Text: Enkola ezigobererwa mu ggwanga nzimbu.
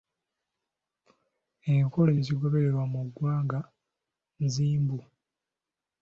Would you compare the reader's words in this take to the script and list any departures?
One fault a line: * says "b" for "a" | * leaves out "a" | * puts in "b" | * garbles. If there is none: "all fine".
all fine